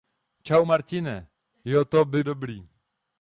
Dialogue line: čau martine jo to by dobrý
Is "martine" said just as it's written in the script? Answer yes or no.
yes